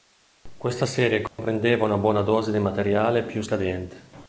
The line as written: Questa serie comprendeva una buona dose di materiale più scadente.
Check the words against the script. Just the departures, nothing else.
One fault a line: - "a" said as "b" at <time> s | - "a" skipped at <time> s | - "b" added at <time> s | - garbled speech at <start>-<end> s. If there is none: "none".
none